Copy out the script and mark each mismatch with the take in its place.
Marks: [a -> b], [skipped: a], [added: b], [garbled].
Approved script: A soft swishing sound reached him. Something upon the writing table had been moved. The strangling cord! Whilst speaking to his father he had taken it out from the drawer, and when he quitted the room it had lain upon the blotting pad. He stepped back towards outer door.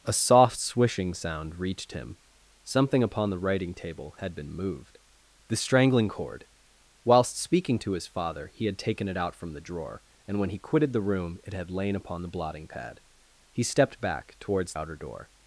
A soft swishing sound reached him. Something upon the writing table had been moved. The strangling cord! Whilst speaking to his father he had taken it out from the drawer, and when he quitted the room it had lain upon the blotting pad. He stepped back towards outer door.